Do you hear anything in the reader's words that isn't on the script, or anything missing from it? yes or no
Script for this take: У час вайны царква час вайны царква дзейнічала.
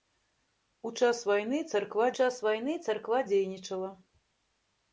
no